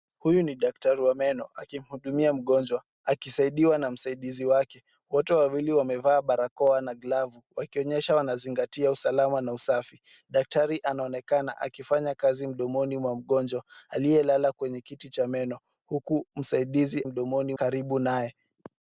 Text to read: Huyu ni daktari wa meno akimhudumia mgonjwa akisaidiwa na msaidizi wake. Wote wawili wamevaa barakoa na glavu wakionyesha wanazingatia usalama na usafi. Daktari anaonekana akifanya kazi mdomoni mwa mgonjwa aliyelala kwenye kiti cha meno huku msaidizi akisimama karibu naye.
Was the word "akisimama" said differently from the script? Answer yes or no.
yes